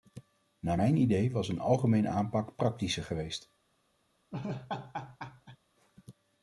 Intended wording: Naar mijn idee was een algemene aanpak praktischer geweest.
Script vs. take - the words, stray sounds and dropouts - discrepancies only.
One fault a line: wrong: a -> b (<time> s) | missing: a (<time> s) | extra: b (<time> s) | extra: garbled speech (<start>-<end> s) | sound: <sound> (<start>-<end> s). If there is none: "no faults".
sound: laugh (4.3-5.6 s)